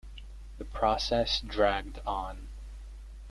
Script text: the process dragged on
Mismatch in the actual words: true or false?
false